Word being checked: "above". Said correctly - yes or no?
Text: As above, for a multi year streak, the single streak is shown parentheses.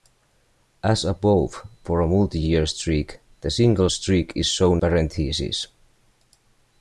yes